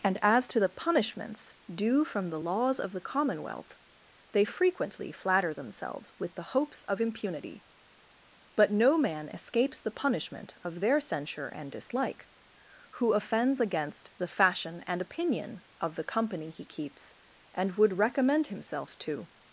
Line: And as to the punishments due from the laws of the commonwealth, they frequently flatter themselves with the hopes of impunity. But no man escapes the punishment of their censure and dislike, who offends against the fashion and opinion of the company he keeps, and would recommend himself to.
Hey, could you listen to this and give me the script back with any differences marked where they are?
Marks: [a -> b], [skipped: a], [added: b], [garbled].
And as to the punishments due from the laws of the commonwealth, they frequently flatter themselves with the hopes of impunity. But no man escapes the punishment of their censure and dislike, who offends against the fashion and opinion of the company he keeps, and would recommend himself to.